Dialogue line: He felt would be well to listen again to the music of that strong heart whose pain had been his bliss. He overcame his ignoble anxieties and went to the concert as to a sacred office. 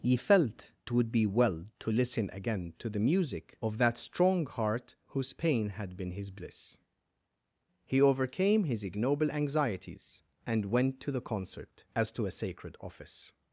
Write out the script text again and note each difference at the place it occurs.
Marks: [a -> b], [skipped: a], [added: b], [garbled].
He felt would be well to listen again to the music of that strong heart whose pain had been his bliss. He overcame his ignoble anxieties and went to the concert as to a sacred office.